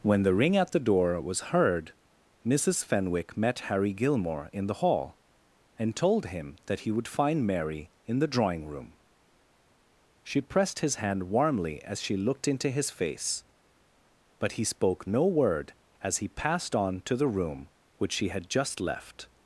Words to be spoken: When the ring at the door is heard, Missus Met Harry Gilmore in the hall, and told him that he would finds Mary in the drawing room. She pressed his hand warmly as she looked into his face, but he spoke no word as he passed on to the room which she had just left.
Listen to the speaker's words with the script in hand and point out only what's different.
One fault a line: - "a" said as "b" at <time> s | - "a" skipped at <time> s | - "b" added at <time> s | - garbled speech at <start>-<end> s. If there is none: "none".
- "is" said as "was" at 1.2 s
- "Fenwick" added at 2.8 s
- "finds" said as "find" at 7.1 s